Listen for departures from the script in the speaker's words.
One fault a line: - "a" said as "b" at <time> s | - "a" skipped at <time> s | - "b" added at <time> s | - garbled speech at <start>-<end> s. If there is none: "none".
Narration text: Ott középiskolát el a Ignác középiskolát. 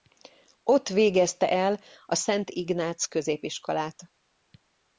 - "középiskolát" said as "végezte" at 0.9 s
- "Szent" added at 2.1 s